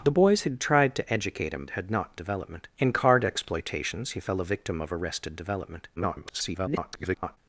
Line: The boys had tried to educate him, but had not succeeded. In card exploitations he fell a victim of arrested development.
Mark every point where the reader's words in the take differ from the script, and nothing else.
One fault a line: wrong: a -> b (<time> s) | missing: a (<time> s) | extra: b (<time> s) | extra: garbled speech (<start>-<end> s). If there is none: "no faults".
missing: but (1.7 s)
wrong: succeeded -> development (2.2 s)
extra: garbled speech (6.0-7.4 s)